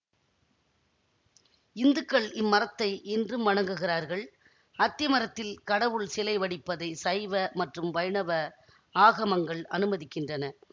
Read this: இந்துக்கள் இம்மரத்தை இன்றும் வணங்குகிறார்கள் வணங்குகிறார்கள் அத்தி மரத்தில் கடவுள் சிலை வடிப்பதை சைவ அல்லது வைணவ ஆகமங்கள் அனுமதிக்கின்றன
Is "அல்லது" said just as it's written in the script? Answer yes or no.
no